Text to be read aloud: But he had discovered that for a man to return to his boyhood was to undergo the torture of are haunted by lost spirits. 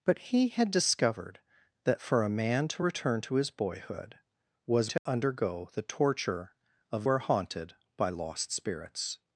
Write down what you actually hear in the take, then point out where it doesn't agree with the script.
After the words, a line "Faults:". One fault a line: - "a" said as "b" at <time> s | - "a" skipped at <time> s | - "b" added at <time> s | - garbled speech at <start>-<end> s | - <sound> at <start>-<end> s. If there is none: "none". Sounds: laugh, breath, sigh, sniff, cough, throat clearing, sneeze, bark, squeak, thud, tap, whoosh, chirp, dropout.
But he had discovered that for a man to return to his boyhood was to undergo the torture of are haunted by lost spirits.
Faults:
- dropout at 5.0-5.1 s